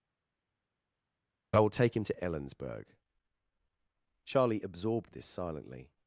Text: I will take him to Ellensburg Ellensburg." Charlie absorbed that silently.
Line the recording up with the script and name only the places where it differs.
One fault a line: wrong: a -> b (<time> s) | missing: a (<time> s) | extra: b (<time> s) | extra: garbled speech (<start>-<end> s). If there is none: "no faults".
missing: Ellensburg (2.9 s)
wrong: that -> this (5.1 s)